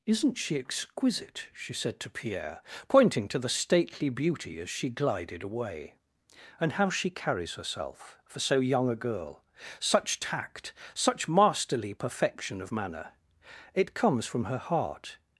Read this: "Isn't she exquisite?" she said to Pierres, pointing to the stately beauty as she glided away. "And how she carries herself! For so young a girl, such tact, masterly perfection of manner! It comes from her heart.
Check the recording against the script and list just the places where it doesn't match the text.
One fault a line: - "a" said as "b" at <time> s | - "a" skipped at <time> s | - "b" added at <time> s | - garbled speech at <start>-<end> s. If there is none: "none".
- "Pierres" said as "Pierre" at 2.1 s
- "such" added at 10.9 s